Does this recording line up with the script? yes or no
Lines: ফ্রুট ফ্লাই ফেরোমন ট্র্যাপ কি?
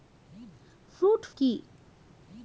no